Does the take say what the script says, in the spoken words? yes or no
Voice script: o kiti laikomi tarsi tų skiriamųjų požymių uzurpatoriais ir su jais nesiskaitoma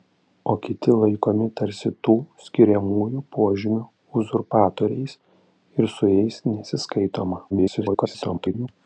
no